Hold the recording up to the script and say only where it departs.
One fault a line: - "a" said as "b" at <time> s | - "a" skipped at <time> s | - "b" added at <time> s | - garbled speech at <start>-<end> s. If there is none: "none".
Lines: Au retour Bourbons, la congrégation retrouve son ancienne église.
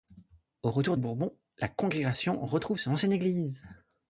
none